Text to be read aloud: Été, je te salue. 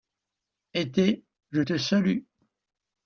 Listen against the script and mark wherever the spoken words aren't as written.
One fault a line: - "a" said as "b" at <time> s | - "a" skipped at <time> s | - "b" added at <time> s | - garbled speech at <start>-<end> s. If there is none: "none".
none